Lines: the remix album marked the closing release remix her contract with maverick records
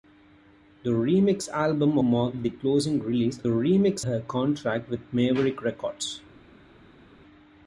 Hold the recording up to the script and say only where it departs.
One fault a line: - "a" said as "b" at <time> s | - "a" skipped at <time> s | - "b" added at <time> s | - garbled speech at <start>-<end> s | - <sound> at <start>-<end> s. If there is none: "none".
none